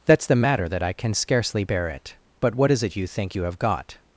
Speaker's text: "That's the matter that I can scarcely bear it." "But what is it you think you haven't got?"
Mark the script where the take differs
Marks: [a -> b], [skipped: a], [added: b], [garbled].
"That's the matter that I can scarcely bear it." "But what is it you think you [haven't -> have] got?"